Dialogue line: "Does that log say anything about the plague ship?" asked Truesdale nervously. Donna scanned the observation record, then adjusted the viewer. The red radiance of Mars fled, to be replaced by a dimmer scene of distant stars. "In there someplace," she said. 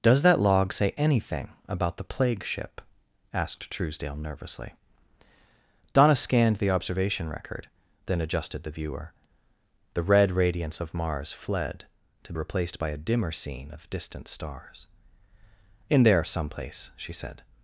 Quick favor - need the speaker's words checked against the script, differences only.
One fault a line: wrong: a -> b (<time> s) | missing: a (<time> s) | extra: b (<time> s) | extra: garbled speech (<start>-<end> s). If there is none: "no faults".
missing: be (12.3 s)